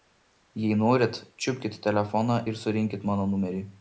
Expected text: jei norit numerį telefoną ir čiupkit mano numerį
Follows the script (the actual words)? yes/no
no